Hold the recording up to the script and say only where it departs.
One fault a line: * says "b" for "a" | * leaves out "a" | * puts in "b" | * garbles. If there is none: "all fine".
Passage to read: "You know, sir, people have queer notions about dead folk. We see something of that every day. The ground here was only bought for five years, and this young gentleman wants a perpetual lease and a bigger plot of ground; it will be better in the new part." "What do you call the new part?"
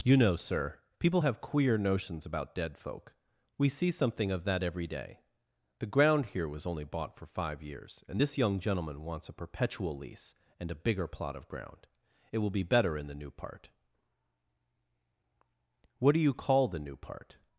all fine